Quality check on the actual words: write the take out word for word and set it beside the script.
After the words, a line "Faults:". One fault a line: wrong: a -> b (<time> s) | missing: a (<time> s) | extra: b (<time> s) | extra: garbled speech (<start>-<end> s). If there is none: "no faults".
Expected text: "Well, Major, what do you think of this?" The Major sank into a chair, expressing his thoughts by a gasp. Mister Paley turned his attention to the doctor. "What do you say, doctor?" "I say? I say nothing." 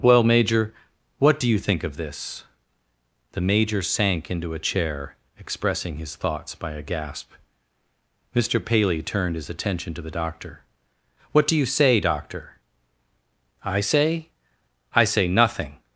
"Well, Major, what do you think of this?" The Major sank into a chair, expressing his thoughts by a gasp. Mister Paley turned his attention to the doctor. "What do you say, doctor?" "I say? I say nothing."
Faults:
no faults